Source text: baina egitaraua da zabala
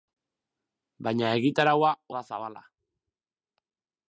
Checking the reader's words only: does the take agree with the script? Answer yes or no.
yes